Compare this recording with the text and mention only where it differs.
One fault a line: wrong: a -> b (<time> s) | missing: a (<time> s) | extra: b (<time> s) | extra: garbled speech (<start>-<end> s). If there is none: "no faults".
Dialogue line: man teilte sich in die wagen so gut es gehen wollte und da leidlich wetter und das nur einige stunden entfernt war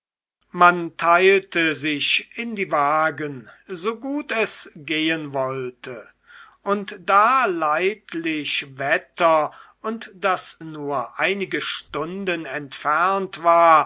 no faults